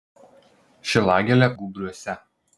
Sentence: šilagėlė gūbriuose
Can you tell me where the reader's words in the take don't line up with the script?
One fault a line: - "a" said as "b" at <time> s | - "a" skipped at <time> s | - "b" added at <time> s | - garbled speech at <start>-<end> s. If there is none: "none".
none